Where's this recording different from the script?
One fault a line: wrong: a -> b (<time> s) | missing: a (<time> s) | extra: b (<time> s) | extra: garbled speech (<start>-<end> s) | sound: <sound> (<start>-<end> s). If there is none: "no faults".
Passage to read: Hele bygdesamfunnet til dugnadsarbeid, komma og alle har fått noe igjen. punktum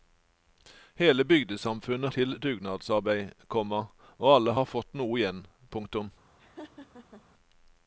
sound: laugh (6.4-7.3 s)